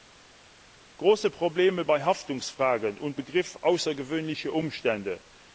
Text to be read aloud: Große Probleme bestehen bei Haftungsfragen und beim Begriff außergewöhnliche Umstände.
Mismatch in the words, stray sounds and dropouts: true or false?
true